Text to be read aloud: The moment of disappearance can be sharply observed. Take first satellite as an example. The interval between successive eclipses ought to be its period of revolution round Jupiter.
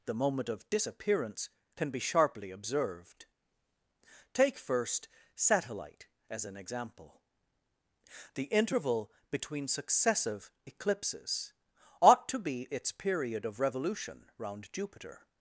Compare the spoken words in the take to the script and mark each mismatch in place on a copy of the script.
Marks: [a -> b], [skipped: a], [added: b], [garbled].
The moment of disappearance can be sharply observed. Take first satellite as an example. The interval between successive eclipses ought to be its period of revolution round Jupiter.